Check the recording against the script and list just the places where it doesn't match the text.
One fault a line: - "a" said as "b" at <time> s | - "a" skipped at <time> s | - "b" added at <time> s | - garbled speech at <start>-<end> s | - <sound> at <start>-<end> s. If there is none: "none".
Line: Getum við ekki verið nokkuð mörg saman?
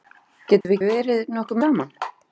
- dropout at 0.6-0.6 s
- "ekki" skipped at 0.8 s
- "mörg" skipped at 1.6 s